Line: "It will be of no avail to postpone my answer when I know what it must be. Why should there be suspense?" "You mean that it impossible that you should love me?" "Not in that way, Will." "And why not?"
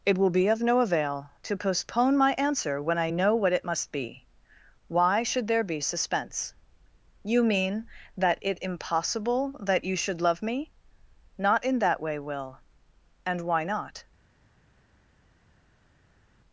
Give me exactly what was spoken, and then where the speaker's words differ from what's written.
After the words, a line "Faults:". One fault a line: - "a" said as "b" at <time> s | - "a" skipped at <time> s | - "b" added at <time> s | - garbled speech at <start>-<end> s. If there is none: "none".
"It will be of no avail to postpone my answer when I know what it must be. Why should there be suspense?" "You mean that it impossible that you should love me?" "Not in that way, Will." "And why not?"
Faults:
none